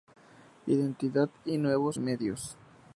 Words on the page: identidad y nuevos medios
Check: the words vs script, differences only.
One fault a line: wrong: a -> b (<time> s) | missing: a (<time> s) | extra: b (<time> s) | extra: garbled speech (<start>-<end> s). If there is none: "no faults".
no faults